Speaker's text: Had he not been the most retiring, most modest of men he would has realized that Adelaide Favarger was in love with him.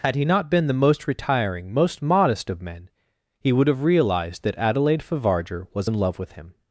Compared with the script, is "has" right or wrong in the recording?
wrong